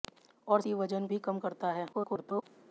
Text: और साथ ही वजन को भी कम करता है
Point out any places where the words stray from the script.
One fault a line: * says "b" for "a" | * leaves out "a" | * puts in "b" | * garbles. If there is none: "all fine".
* leaves out "साथ"
* leaves out "को"
* garbles